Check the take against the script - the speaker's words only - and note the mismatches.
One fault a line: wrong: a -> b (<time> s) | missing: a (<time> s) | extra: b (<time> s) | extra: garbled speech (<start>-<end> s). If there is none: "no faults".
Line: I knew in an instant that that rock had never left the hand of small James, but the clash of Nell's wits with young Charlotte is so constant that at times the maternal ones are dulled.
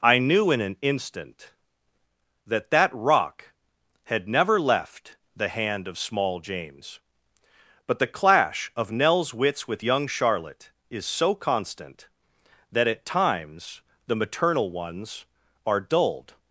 no faults